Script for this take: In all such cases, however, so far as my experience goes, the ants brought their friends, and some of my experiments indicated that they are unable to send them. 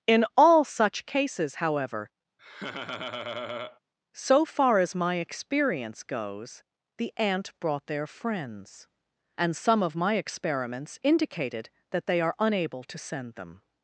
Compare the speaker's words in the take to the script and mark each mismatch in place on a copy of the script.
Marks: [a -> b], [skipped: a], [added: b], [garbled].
In all such cases, however, so far as my experience goes, the [ants -> ant] brought their friends, and some of my experiments indicated that they are unable to send them.